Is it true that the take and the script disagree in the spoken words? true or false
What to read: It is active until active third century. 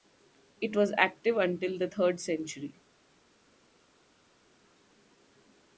true